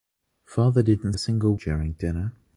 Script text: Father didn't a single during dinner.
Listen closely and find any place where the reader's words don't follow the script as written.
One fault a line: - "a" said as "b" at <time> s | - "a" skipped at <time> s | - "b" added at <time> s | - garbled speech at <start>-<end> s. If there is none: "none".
none